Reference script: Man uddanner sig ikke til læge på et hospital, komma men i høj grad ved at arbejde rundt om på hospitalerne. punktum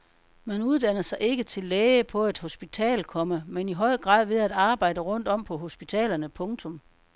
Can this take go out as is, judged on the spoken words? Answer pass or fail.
pass